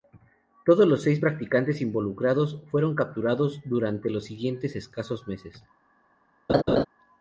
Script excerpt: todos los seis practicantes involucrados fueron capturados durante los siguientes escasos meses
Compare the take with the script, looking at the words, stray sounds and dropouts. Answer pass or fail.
fail